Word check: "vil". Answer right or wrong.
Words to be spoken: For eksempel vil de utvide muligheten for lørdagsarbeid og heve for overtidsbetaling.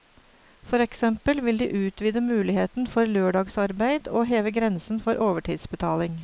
right